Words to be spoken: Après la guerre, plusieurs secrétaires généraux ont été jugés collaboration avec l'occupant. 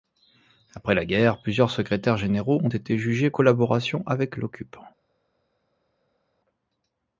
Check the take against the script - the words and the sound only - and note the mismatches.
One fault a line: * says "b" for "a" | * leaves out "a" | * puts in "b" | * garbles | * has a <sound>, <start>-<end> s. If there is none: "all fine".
all fine